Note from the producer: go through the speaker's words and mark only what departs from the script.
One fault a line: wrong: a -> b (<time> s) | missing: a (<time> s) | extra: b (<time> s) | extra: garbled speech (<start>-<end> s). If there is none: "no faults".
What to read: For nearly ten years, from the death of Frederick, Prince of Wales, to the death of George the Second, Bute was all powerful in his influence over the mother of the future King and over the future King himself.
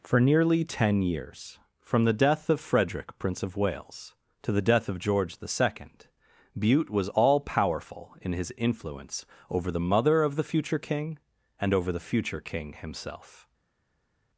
no faults